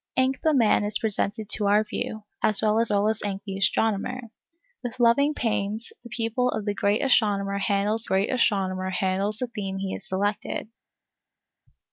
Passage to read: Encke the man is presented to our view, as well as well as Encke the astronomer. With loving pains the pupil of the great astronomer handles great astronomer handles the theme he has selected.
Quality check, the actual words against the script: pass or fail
pass